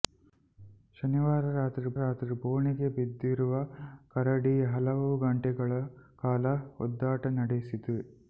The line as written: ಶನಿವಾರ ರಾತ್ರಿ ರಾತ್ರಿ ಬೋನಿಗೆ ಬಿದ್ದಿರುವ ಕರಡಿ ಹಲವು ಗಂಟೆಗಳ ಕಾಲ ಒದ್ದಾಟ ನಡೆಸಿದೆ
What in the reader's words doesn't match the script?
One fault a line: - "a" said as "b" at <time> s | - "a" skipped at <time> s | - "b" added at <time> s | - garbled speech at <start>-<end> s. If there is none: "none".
none